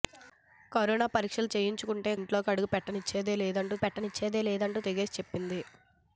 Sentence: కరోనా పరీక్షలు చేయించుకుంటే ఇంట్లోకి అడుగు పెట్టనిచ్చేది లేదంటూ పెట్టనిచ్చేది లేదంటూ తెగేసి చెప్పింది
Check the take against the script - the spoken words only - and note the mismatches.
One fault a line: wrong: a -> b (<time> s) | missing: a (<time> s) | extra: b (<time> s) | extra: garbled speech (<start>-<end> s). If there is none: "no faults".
no faults